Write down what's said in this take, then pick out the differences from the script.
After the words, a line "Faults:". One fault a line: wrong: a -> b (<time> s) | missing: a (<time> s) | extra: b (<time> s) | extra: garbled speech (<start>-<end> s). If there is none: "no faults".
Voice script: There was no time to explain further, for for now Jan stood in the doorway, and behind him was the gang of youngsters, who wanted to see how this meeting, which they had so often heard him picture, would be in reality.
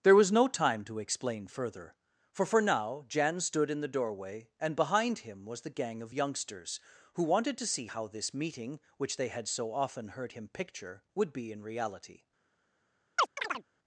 There was no time to explain further, for for now Jan stood in the doorway, and behind him was the gang of youngsters, who wanted to see how this meeting, which they had so often heard him picture, would be in reality.
Faults:
no faults